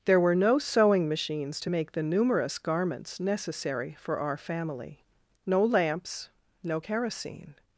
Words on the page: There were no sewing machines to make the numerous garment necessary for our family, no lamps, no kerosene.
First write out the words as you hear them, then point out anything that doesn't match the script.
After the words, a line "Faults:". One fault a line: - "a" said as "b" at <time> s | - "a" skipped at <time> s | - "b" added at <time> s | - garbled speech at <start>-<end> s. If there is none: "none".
There were no sewing machines to make the numerous garments necessary for our family, no lamps, no kerosene.
Faults:
- "garment" said as "garments" at 2.6 s